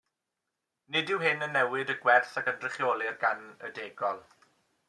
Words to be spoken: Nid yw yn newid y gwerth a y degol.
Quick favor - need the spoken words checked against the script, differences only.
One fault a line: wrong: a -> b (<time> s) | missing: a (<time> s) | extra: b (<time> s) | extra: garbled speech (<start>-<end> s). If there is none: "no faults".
extra: hyn (1.2 s)
extra: gynrychiolir gan (2.5 s)